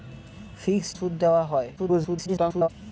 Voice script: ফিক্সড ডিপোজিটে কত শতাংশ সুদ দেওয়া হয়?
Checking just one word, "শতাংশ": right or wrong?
wrong